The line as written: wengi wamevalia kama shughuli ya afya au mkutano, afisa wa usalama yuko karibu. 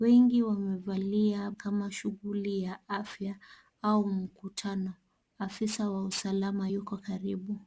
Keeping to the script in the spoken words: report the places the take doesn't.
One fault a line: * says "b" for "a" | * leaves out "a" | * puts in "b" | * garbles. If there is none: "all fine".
all fine